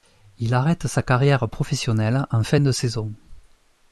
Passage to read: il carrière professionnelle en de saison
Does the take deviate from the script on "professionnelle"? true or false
false